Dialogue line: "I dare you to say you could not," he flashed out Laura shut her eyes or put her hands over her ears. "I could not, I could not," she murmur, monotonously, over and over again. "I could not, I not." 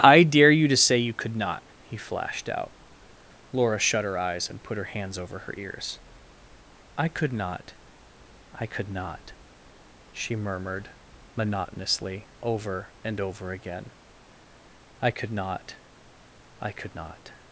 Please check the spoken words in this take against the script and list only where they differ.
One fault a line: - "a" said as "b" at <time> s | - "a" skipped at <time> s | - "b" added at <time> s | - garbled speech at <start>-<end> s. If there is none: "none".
- "or" said as "and" at 4.5 s
- "murmur" said as "murmured" at 10.4 s
- "could" added at 16.7 s